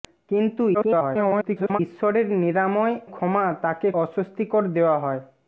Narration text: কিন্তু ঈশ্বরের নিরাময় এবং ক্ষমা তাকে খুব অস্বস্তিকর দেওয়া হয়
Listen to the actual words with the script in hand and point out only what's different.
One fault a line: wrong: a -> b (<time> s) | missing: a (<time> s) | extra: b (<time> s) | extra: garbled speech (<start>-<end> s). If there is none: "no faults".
extra: garbled speech (0.7-1.8 s)
missing: এবং (3.0 s)
missing: খুব (3.9 s)